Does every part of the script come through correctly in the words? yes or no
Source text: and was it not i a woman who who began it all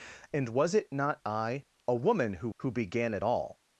yes